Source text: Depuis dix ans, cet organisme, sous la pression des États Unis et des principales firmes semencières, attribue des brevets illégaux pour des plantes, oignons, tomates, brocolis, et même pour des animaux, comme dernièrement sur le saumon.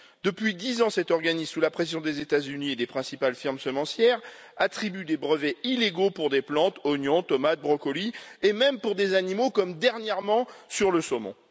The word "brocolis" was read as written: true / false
true